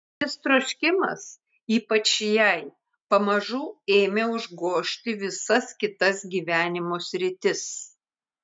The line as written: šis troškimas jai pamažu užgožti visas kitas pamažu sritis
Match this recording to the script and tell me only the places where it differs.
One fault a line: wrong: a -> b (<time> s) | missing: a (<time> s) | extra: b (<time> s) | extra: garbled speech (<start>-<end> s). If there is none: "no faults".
extra: ypač (1.8 s)
extra: ėmė (4.0 s)
wrong: pamažu -> gyvenimo (6.3 s)